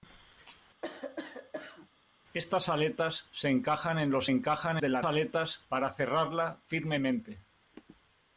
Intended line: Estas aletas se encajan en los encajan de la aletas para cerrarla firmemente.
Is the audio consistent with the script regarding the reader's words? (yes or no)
yes